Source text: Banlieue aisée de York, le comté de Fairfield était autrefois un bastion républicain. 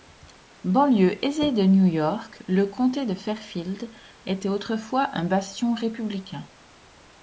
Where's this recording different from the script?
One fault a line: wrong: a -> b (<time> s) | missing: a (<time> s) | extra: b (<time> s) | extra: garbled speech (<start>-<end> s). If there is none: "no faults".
extra: New (1.6 s)